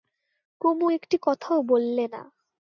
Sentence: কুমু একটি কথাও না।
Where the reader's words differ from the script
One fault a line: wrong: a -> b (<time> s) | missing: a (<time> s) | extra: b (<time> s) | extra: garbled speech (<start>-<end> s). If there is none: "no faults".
extra: বললে (1.6 s)